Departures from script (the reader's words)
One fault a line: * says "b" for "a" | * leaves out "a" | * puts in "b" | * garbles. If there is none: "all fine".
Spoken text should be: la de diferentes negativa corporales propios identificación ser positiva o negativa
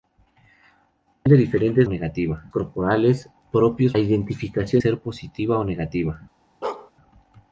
all fine